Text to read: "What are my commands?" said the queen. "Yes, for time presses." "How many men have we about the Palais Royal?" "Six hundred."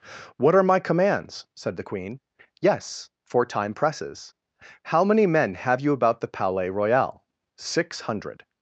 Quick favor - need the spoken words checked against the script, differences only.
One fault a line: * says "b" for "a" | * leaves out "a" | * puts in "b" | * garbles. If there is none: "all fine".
* says "you" for "we"